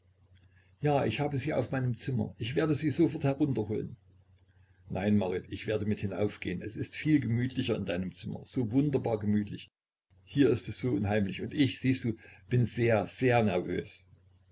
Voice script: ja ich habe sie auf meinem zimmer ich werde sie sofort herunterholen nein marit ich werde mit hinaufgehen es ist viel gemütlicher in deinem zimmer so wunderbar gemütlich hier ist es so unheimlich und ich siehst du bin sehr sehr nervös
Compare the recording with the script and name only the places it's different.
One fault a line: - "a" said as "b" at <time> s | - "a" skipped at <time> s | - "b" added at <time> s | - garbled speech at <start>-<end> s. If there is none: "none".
none